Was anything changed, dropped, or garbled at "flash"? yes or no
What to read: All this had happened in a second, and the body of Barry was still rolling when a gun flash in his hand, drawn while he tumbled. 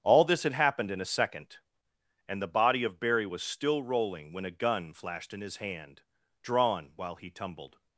yes